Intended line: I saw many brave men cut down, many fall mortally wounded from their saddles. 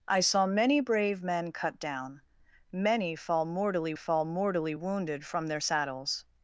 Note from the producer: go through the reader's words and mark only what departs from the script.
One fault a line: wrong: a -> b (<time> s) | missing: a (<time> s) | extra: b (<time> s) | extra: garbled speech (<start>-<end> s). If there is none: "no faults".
extra: fall mortally (3.9 s)